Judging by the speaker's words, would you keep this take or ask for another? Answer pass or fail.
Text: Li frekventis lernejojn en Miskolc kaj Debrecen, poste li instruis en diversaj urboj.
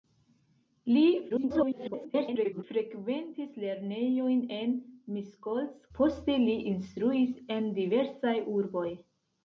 fail